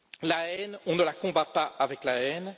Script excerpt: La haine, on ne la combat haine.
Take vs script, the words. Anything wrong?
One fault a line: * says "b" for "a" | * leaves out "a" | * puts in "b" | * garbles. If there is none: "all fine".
* puts in "pas avec la"